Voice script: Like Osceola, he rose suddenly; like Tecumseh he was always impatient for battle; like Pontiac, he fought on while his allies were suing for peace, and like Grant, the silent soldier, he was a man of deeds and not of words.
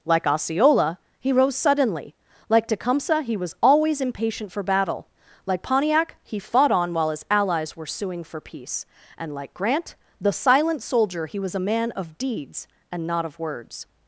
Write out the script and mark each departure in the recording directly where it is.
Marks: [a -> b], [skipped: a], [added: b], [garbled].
Like Osceola, he rose suddenly; like Tecumseh he was always impatient for battle; like Pontiac, he fought on while his allies were suing for peace, and like Grant, the silent soldier, he was a man of deeds and not of words.